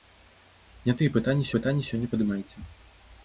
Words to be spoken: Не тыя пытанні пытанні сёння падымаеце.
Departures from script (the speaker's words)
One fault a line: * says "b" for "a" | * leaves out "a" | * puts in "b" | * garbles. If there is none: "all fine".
all fine